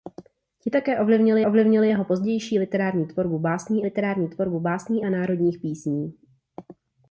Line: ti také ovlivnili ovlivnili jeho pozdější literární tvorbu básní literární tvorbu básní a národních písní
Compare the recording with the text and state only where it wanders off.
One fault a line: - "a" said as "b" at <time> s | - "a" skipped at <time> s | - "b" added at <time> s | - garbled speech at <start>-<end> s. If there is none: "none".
none